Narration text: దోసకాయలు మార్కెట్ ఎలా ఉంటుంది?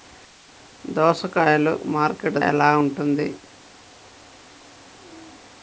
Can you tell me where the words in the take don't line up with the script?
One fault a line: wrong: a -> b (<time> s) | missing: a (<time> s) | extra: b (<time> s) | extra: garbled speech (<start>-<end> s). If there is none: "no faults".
no faults